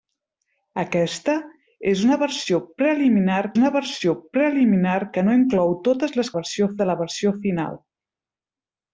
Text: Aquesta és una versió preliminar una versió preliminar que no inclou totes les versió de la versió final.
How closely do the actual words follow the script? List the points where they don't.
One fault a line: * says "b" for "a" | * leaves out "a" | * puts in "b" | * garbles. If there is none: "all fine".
all fine